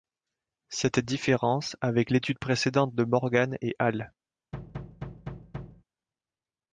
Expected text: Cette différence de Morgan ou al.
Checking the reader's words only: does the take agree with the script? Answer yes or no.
no